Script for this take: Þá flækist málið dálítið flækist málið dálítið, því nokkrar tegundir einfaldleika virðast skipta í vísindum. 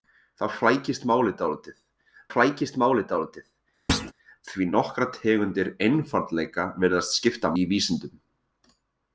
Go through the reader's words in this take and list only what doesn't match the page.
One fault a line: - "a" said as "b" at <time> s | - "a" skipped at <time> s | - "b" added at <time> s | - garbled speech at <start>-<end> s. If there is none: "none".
none